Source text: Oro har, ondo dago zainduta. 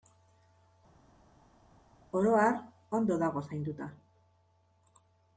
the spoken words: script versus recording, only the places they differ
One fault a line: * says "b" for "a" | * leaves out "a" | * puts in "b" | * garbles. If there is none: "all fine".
all fine